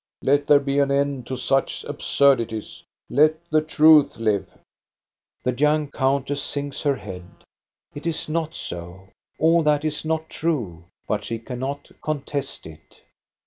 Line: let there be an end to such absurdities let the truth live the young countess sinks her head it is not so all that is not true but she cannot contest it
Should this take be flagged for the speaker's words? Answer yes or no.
no